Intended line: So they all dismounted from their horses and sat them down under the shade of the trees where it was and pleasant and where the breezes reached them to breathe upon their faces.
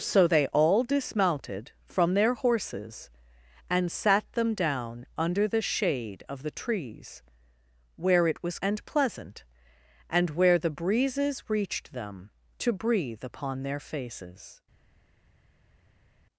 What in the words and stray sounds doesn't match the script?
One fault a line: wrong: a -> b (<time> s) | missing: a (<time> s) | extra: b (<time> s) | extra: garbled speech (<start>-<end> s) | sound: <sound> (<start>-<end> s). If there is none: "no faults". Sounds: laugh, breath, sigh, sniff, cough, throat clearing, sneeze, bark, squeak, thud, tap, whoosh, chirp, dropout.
no faults